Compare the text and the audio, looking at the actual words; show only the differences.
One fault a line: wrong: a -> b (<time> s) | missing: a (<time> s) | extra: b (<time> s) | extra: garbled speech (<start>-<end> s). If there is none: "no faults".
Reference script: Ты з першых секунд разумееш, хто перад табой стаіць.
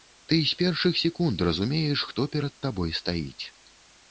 no faults